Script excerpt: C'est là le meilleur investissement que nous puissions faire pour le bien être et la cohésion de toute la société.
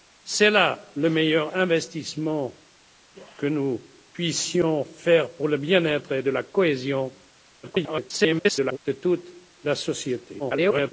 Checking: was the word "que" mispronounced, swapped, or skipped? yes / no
no